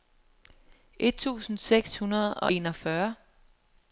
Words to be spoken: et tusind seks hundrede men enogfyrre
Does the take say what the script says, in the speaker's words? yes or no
no